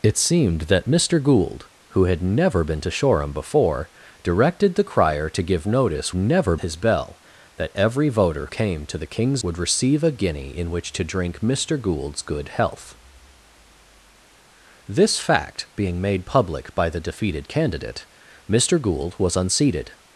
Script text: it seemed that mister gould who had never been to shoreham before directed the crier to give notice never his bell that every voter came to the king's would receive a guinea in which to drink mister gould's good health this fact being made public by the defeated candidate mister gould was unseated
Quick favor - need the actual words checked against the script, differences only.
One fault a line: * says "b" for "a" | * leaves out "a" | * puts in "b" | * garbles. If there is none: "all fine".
all fine